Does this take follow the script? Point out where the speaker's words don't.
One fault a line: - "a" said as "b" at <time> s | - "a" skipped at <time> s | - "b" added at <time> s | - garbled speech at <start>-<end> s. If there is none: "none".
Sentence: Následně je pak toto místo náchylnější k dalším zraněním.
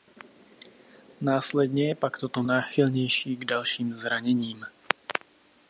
- "místo" skipped at 2.4 s